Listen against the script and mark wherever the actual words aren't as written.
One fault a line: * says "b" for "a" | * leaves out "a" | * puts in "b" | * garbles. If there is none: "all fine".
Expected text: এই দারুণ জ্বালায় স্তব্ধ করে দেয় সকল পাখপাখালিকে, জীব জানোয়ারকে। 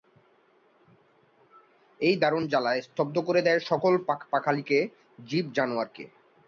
all fine